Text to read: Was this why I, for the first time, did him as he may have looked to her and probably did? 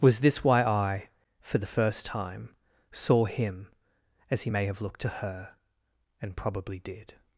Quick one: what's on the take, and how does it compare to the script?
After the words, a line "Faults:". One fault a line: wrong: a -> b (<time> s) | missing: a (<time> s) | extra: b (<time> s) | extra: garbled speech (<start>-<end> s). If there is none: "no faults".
Was this why I, for the first time, saw him as he may have looked to her and probably did?
Faults:
wrong: did -> saw (2.9 s)